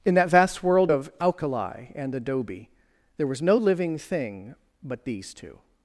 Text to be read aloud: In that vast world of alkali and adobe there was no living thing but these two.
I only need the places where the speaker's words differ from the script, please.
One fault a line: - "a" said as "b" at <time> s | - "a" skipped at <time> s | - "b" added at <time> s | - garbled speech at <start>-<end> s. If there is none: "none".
none